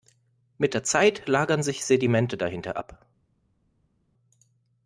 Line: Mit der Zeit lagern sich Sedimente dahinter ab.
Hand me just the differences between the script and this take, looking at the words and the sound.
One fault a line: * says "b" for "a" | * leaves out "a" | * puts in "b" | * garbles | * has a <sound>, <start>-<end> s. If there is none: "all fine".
all fine